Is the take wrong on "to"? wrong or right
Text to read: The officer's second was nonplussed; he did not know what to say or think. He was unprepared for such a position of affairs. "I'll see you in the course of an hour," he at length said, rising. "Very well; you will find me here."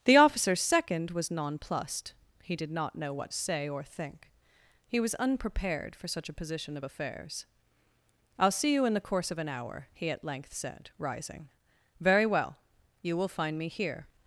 wrong